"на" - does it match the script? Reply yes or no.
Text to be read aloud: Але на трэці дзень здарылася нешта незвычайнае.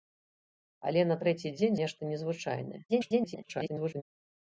yes